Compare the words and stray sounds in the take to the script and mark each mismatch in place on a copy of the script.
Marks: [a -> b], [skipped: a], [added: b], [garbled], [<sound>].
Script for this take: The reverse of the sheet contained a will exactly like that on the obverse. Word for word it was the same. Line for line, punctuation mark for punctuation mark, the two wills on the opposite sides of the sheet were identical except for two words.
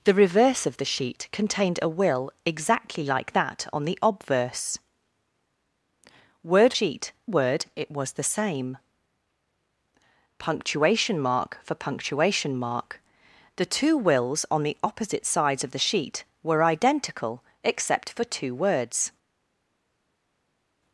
The reverse of the sheet contained a will exactly like that on the obverse. Word [for -> sheet] word it was the same. [skipped: Line for line,] punctuation mark for punctuation mark, the two wills on the opposite sides of the sheet were identical except for two words.